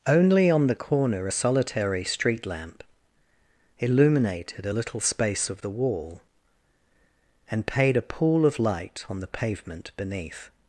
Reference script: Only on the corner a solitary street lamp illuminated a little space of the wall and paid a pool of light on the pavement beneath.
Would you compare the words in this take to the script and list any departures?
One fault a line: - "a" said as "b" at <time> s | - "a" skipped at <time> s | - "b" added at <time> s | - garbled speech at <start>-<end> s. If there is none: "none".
none